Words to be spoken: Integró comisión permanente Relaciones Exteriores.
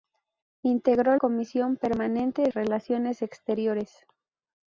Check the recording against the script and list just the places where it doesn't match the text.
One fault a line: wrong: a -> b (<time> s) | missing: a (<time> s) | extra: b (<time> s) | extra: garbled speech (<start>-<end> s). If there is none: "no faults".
no faults